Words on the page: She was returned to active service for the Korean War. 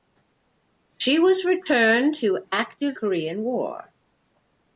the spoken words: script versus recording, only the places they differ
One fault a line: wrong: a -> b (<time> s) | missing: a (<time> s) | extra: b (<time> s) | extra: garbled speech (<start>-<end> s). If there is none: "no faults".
missing: service for the (3.0 s)